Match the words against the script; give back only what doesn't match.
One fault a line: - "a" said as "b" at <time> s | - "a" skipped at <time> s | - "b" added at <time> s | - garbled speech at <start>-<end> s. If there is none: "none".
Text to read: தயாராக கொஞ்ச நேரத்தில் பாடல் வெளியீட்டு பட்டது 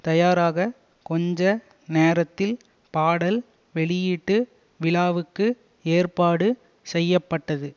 - "விழாவுக்கு ஏற்பாடு செய்ய" added at 4.8 s